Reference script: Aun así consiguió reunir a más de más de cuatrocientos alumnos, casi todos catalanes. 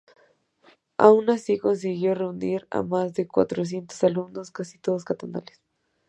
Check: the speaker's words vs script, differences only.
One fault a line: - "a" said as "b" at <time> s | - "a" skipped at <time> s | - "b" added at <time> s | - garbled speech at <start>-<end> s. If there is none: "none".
- "más de" skipped at 3.3 s